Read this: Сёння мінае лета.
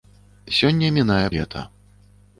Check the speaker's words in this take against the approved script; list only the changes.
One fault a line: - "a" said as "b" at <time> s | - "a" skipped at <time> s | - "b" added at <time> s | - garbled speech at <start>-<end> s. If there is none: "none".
none